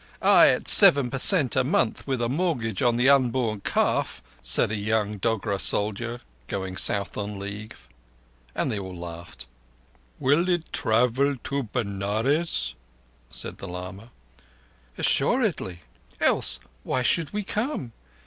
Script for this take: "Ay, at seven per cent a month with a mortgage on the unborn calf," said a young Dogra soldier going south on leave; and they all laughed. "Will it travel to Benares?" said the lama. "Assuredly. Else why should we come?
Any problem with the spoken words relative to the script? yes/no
no